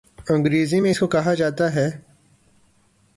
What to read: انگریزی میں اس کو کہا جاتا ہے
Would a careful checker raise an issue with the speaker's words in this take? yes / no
no